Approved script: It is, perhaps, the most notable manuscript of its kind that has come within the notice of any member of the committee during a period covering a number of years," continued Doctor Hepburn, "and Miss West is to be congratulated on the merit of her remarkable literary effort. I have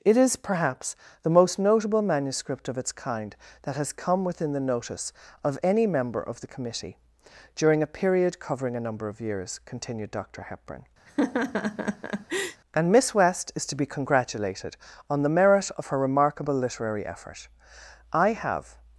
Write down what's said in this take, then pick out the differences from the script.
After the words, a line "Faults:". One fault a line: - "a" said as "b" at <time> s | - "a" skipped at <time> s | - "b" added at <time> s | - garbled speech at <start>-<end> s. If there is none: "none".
It is, perhaps, the most notable manuscript of its kind that has come within the notice of any member of the committee during a period covering a number of years," continued Doctor Hepburn, "and Miss West is to be congratulated on the merit of her remarkable literary effort. I have
Faults:
none